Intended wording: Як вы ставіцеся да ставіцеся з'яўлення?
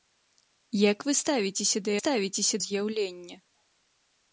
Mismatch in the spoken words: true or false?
false